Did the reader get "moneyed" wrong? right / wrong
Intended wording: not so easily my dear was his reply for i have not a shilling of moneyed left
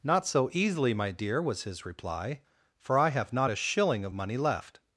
wrong